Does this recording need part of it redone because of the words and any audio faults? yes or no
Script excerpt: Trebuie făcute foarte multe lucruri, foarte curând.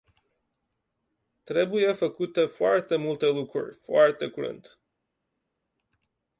no